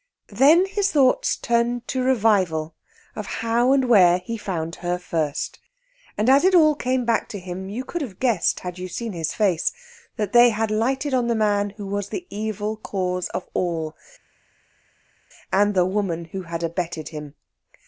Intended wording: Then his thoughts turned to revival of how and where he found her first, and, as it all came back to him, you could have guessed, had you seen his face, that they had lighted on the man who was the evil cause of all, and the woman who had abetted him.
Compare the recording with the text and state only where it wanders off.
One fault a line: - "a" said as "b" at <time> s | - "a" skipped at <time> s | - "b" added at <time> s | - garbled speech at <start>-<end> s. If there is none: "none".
none